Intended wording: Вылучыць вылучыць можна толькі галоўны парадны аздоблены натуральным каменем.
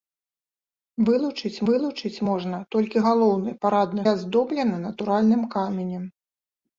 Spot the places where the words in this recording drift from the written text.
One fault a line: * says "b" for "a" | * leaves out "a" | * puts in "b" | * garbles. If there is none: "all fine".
all fine